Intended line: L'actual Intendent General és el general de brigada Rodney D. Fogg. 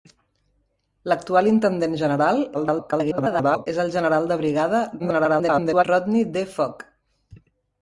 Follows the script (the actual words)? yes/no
no